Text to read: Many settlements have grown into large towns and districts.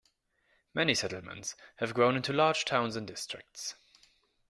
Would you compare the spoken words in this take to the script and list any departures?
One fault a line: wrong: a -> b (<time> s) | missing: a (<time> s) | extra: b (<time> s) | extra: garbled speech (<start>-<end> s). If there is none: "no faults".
no faults